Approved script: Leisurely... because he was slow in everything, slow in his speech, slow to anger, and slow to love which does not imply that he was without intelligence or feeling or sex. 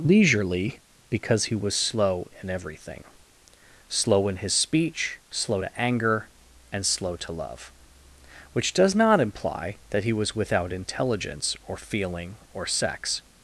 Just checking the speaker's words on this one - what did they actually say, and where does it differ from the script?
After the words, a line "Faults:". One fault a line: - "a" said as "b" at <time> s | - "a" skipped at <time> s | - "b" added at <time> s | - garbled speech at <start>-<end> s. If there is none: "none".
Leisurely... because he was slow in everything, slow in his speech, slow to anger, and slow to love which does not imply that he was without intelligence or feeling or sex.
Faults:
none